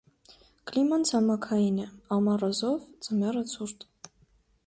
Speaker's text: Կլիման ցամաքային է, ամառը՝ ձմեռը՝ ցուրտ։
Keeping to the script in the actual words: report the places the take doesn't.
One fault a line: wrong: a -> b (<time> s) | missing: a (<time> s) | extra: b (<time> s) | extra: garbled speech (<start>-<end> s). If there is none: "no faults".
extra: զով (2.6 s)